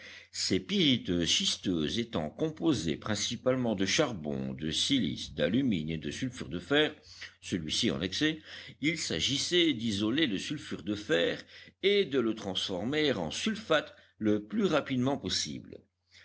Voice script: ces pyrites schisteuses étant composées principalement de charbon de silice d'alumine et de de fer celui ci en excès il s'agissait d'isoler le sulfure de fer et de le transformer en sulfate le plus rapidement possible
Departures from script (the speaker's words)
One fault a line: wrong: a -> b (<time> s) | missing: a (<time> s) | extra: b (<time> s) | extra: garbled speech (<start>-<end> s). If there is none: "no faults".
extra: sulfure (6.1 s)